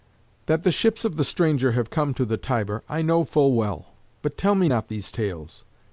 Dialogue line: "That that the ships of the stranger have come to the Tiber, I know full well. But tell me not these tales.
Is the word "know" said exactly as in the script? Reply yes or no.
yes